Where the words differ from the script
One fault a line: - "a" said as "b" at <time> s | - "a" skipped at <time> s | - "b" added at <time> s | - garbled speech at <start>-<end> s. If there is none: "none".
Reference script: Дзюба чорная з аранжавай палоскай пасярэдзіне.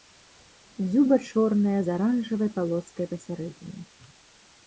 none